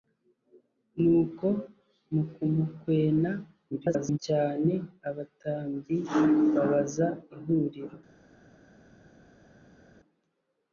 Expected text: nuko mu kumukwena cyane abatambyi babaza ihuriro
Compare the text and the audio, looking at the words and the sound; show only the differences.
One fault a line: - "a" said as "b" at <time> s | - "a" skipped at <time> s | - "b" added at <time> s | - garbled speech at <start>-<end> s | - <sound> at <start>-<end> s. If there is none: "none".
- garbled speech at 3.7-4.2 s